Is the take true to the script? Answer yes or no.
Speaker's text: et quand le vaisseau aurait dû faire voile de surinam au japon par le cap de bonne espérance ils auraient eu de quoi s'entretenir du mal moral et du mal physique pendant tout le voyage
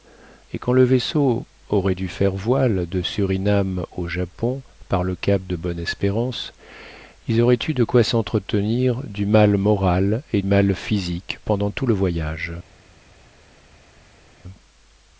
no